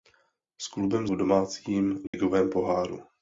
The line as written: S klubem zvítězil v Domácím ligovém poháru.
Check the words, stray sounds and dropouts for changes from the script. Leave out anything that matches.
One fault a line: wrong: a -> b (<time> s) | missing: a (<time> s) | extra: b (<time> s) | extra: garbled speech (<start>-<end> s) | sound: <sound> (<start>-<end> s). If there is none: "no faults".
missing: zvítězil (1.1 s)
sound: dropout (2.1-2.1 s)